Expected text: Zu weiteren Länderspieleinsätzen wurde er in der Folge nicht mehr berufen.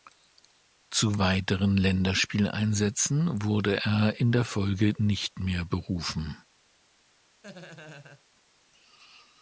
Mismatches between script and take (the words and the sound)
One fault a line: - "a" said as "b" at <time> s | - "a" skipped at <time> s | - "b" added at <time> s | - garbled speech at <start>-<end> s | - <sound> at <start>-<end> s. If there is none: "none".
- laugh at 7.4-8.2 s